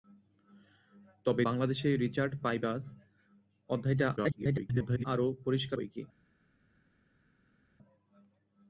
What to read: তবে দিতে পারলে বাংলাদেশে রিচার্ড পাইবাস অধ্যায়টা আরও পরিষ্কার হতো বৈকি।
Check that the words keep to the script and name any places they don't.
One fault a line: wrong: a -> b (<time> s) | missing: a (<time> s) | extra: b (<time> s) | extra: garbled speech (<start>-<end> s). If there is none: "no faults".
missing: দিতে পারলে (1.4 s)
extra: garbled speech (4.2-5.0 s)
missing: হতো (5.8 s)